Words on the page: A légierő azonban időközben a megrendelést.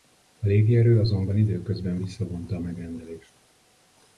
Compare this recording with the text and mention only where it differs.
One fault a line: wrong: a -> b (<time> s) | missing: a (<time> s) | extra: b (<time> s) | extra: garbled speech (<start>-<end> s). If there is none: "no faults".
extra: visszavonta (2.0 s)